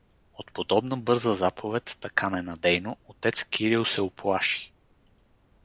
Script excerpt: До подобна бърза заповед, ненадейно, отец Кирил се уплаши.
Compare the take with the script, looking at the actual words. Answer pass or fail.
fail